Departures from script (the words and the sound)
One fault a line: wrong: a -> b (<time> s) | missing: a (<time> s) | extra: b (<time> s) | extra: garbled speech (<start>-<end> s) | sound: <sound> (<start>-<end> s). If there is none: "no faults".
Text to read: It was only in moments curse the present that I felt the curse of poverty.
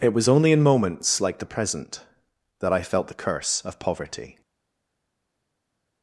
wrong: curse -> like (1.2 s)